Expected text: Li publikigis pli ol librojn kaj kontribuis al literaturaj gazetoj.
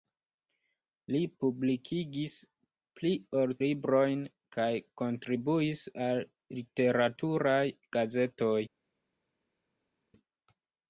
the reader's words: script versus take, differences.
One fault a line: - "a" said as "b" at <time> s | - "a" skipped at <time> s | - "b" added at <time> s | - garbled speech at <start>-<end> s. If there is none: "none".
none